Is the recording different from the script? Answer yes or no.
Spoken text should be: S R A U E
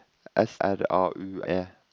no